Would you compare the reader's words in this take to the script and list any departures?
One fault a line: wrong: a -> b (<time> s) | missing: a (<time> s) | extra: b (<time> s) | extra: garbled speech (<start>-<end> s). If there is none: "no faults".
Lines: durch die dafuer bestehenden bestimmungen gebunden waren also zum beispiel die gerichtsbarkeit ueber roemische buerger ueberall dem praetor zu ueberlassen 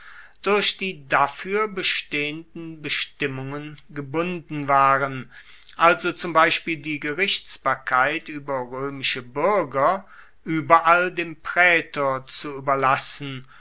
no faults